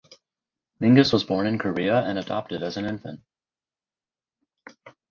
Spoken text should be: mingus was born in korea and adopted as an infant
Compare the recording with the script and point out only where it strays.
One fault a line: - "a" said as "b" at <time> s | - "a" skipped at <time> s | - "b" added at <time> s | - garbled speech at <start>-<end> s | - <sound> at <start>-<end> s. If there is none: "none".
none